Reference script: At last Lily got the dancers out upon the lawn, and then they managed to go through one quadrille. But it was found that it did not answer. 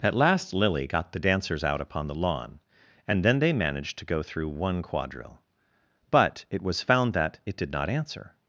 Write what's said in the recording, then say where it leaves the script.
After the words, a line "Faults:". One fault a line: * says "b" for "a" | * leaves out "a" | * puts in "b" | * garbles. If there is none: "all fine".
At last Lily got the dancers out upon the lawn, and then they managed to go through one quadrille. But it was found that it did not answer.
Faults:
all fine